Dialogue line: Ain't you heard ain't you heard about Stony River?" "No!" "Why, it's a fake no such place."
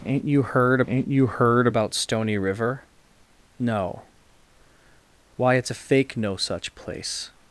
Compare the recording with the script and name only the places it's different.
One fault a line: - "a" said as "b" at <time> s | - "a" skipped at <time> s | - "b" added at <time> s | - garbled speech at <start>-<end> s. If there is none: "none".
none